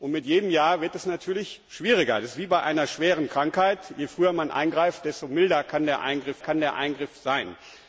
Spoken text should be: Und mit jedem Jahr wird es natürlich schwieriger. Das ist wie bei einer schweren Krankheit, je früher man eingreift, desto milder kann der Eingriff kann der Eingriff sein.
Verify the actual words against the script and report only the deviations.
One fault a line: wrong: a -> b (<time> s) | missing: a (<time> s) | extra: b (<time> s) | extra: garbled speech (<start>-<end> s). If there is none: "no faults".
no faults